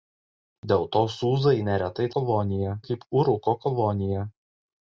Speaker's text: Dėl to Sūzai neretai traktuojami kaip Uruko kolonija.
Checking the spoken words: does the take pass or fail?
fail